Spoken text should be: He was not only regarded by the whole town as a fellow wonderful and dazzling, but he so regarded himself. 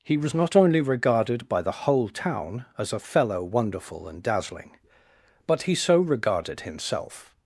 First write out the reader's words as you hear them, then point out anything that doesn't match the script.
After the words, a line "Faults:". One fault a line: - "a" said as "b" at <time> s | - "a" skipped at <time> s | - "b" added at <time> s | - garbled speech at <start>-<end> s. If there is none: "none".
He was not only regarded by the whole town as a fellow wonderful and dazzling, but he so regarded himself.
Faults:
none